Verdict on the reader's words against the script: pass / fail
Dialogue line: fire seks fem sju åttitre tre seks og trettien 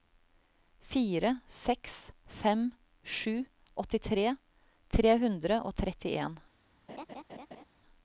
fail